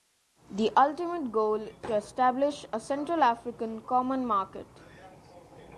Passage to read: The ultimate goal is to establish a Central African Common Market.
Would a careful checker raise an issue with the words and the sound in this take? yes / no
yes